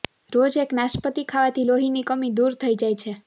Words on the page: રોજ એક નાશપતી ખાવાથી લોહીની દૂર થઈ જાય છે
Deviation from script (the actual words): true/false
true